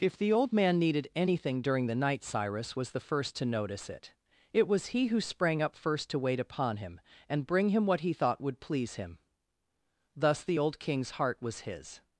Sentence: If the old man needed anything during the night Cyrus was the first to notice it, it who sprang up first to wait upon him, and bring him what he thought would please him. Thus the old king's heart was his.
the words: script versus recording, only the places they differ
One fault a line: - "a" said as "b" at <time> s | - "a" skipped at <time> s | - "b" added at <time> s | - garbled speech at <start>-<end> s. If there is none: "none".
- "was he" added at 4.6 s